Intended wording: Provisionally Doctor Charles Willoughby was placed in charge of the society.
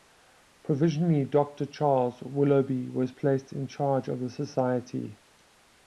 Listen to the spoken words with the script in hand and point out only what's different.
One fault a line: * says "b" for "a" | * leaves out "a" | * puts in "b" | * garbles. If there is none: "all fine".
all fine